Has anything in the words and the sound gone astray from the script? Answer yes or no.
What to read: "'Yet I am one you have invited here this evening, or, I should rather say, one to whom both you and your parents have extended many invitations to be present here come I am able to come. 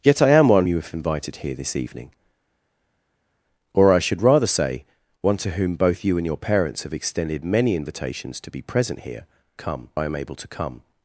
no